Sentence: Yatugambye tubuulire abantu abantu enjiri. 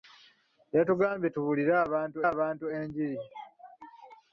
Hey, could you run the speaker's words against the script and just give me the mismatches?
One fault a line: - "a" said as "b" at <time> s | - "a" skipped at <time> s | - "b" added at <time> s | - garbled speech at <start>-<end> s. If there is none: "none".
none